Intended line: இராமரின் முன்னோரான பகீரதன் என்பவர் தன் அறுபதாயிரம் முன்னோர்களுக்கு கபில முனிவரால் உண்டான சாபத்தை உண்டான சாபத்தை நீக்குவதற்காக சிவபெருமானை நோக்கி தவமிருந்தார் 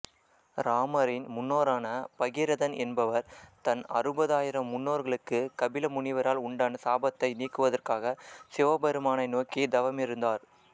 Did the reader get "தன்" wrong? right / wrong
right